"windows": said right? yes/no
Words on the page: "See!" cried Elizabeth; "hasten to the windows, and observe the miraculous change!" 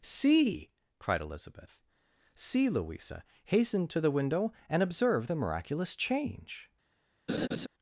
no